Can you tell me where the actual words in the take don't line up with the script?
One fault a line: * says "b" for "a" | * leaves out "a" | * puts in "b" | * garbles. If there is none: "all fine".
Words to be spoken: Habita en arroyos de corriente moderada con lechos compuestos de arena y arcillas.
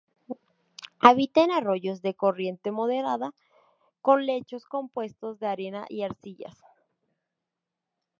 all fine